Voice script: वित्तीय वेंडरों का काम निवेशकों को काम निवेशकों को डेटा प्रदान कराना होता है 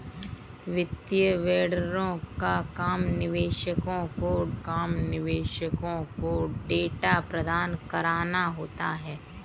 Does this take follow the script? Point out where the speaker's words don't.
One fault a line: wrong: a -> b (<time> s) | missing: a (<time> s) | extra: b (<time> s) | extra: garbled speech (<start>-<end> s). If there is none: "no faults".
no faults